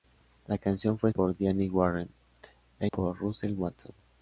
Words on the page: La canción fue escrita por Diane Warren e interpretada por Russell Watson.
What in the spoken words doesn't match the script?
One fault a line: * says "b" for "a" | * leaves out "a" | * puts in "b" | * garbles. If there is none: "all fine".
* leaves out "escrita"
* leaves out "interpretada"